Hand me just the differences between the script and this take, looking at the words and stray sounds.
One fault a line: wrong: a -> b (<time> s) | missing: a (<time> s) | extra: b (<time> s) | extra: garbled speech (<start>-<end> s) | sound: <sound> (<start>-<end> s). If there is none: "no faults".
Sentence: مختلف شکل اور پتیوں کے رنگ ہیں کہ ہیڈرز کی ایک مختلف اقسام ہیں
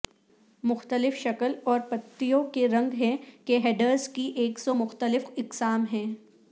extra: سو (4.6 s)